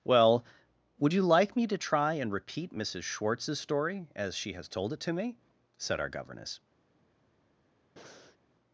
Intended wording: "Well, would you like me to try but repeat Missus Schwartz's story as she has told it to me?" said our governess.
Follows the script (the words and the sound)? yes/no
no